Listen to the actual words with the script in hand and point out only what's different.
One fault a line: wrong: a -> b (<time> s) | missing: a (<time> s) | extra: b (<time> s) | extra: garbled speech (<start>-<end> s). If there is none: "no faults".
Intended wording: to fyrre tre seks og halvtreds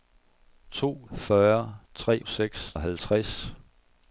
no faults